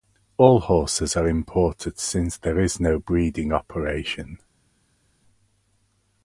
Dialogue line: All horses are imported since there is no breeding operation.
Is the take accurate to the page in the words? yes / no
yes